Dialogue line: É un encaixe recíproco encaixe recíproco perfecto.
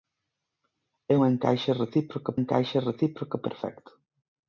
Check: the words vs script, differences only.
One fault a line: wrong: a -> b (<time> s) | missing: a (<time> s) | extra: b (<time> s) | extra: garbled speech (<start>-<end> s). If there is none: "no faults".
no faults